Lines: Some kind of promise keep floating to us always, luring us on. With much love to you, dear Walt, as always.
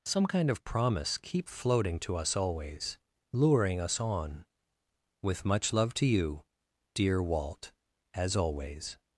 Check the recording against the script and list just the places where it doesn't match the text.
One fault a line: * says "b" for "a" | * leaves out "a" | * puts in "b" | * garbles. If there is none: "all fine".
all fine